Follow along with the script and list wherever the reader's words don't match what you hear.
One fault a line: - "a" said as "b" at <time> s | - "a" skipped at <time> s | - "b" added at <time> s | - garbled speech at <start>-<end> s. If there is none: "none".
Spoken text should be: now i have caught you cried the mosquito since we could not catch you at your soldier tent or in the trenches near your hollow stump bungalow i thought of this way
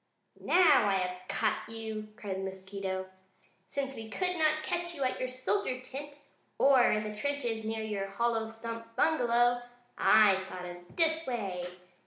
none